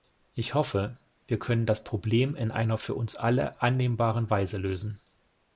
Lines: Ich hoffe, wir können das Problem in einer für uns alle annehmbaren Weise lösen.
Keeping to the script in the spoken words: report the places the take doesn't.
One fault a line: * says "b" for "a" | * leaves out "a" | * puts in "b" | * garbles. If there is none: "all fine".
all fine